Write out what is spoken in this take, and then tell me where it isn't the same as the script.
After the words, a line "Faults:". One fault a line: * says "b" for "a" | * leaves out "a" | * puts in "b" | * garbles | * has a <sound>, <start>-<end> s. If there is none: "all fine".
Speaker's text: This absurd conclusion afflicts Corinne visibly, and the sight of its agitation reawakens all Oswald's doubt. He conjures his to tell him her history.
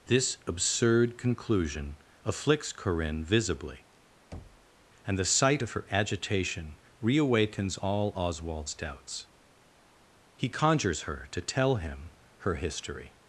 This absurd conclusion afflicts Corinne visibly, and the sight of her agitation reawakens all Oswald's doubts. He conjures her to tell him her history.
Faults:
* has a thud, 4.3-4.7 s
* says "her" for "its"
* says "doubts" for "doubt"
* says "her" for "his"